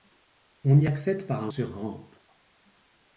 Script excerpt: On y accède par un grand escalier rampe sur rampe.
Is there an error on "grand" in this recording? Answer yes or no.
yes